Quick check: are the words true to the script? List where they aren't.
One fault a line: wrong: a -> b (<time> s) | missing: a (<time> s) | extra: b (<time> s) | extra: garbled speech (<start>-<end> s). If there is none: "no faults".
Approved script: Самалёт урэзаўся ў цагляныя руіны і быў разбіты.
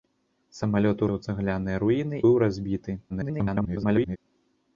missing: урэзаўся (1.0 s)
missing: і (2.2 s)
extra: garbled speech (3.1-4.2 s)